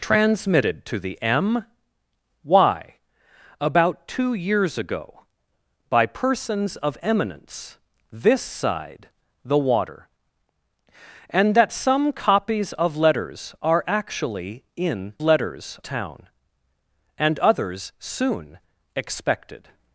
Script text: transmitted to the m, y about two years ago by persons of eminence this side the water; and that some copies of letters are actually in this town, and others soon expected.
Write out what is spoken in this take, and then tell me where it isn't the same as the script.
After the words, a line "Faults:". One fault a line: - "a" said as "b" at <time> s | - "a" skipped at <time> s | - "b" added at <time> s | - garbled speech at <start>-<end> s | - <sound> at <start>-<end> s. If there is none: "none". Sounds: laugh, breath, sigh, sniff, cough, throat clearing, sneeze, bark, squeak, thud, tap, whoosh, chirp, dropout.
transmitted to the m, y about two years ago by persons of eminence this side the water; and that some copies of letters are actually in letters town, and others soon expected.
Faults:
- "this" said as "letters" at 15.2 s